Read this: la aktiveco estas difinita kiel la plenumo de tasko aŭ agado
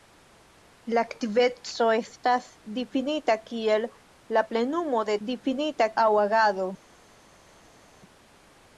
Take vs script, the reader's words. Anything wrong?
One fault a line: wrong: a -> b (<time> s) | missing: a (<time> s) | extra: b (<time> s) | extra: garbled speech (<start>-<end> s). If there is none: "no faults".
wrong: tasko -> difinita (5.3 s)